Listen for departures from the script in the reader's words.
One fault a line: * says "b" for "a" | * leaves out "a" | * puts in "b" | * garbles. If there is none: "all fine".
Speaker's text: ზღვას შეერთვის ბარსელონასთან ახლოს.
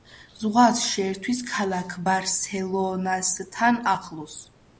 * puts in "ქალაქ"